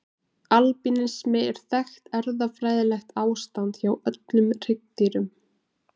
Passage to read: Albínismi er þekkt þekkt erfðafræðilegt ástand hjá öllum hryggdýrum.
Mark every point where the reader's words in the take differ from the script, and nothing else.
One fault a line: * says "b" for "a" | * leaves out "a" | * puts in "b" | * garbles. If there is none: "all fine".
* leaves out "þekkt"